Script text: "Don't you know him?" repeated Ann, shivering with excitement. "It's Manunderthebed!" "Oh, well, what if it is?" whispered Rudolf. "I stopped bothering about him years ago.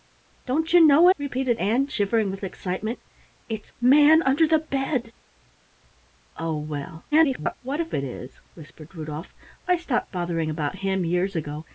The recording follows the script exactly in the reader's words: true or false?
false